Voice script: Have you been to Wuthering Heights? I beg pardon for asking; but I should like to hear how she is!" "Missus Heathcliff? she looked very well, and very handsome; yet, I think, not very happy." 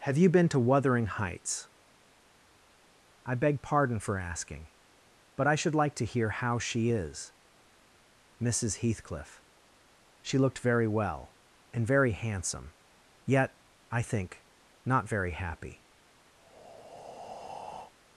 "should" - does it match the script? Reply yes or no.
yes